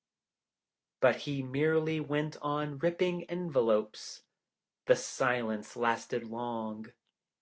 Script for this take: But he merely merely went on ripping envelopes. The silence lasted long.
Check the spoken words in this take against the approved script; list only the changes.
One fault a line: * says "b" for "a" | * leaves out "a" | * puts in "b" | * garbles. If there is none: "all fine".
* leaves out "merely"